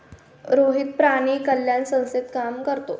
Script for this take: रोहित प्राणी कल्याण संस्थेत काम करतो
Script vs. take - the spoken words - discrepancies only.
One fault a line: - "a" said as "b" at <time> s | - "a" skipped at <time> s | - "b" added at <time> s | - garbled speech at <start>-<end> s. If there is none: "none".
none